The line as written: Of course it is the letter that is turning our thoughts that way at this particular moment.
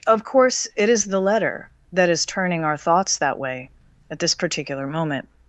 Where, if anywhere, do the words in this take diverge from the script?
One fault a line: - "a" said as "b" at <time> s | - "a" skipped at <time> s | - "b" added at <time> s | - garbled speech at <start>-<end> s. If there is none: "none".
none